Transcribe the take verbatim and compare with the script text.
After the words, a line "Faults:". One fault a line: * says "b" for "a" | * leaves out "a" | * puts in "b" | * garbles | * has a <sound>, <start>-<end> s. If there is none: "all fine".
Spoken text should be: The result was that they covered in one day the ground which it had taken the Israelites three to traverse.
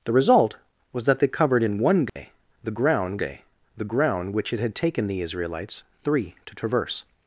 The result was that they covered in one day the ground day the ground which it had taken the Israelites three to traverse.
Faults:
* has a dropout, 2.1-2.2 s
* puts in "day the ground"